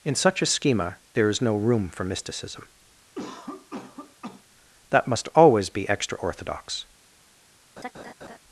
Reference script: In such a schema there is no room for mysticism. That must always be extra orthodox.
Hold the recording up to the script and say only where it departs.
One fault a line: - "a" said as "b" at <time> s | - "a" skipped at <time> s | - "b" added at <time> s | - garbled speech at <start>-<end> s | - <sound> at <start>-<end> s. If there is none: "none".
- cough at 3.1-4.4 s
- laugh at 7.8-8.4 s